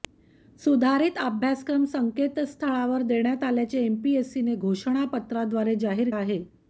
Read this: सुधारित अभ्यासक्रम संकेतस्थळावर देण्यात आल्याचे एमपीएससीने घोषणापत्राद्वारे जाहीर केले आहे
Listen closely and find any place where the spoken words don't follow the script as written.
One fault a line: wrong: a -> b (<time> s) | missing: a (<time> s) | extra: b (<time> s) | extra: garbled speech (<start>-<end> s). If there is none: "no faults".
missing: केले (6.1 s)